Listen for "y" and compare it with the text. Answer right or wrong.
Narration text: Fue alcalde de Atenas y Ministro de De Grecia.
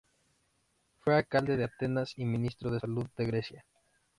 right